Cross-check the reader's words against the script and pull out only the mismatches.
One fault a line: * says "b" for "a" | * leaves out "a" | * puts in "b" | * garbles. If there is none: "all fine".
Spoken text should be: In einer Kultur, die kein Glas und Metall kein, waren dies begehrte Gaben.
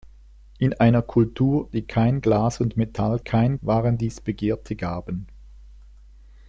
all fine